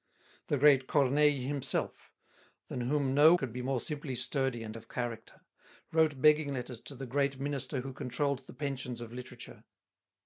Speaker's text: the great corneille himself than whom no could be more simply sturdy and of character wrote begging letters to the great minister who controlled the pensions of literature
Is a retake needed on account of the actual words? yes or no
no